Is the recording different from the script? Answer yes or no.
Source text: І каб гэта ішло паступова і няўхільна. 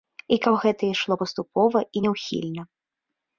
no